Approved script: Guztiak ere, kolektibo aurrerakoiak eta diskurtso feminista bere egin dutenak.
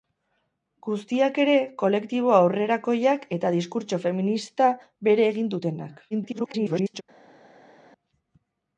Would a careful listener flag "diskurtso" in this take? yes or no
no